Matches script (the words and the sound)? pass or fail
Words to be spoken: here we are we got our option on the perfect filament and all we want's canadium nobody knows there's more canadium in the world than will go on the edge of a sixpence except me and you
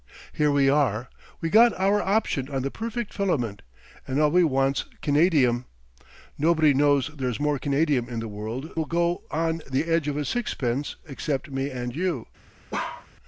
fail